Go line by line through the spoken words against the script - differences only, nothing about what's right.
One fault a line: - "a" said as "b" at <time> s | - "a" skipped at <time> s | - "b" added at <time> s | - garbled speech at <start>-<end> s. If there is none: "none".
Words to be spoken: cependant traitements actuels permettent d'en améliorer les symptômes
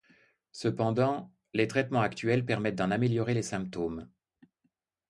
- "les" added at 1.5 s